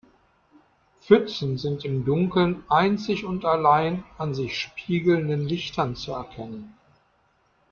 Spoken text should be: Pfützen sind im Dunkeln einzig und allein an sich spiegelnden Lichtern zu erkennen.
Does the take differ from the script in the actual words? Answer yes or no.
no